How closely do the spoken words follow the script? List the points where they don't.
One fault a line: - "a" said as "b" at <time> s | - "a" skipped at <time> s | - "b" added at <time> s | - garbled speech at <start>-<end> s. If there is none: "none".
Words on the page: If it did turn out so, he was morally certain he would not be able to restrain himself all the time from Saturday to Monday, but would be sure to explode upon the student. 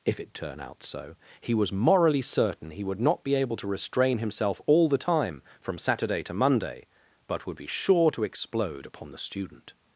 - "did" skipped at 0.3 s